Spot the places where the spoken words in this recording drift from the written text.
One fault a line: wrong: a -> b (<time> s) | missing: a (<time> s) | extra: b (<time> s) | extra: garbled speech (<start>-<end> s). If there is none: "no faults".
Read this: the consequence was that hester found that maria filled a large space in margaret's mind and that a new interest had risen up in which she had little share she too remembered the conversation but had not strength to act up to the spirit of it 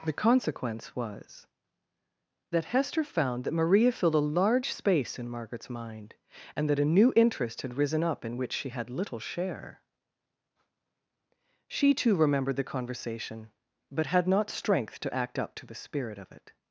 no faults